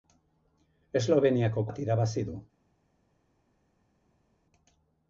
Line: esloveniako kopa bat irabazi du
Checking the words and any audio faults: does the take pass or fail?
fail